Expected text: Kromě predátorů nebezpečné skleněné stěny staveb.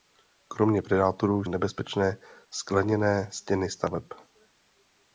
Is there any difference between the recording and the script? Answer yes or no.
no